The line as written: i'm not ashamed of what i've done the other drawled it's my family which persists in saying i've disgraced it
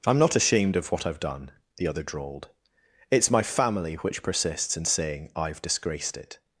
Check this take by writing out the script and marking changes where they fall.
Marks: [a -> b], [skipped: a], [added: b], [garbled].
i'm not ashamed of what i've done the other drawled it's my family which persists in saying i've disgraced it